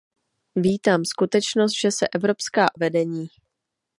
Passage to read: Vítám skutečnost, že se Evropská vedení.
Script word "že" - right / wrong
right